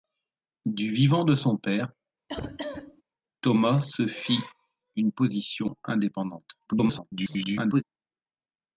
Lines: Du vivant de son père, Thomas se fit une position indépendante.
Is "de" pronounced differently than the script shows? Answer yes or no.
no